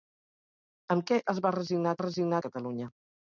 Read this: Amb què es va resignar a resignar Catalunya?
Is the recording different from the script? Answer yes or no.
no